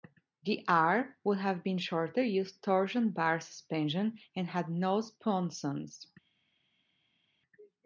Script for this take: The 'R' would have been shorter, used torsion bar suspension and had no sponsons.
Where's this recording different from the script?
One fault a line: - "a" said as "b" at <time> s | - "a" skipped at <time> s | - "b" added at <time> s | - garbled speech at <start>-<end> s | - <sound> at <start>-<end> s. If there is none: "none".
none